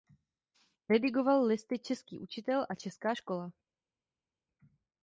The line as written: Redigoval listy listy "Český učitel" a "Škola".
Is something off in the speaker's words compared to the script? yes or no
yes